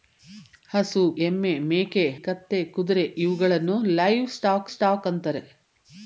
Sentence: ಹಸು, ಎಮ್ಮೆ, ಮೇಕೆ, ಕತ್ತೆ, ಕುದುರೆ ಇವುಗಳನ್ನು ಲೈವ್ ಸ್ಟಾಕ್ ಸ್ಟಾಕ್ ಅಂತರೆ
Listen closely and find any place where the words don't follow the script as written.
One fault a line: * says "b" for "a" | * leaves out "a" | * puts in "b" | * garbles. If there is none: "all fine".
all fine